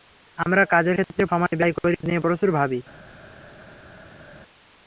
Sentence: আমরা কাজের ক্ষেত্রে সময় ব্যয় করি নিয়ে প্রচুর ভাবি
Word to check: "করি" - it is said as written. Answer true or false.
true